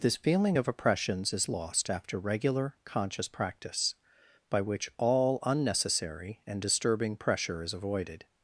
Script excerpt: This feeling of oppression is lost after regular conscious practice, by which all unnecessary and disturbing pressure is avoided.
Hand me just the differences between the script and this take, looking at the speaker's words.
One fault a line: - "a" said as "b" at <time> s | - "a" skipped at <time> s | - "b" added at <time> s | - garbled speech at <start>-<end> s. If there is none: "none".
- "oppression" said as "oppressions" at 0.7 s